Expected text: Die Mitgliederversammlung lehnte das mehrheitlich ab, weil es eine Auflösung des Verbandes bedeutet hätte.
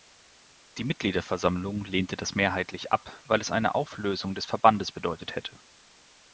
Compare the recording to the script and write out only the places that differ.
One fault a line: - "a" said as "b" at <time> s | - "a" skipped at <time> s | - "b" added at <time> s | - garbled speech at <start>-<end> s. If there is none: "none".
none